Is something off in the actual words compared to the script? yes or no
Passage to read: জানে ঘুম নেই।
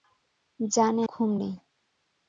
no